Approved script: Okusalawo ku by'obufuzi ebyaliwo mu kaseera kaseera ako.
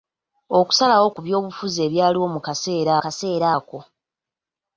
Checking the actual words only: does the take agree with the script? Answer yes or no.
yes